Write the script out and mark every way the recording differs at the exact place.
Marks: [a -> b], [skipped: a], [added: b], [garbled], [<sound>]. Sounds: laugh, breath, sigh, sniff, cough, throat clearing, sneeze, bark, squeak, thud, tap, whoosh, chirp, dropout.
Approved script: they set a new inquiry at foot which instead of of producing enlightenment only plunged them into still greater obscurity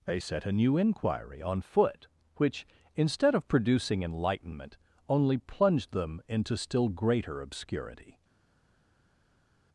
they set a new inquiry [at -> on] foot which instead of [skipped: of] producing enlightenment only plunged them into still greater obscurity